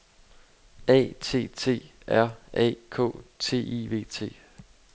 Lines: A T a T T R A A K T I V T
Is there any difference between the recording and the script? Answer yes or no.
yes